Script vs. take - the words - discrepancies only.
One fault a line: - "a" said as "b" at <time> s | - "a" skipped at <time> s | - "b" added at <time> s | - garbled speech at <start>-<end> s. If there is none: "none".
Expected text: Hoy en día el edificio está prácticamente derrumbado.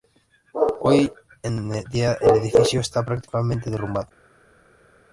none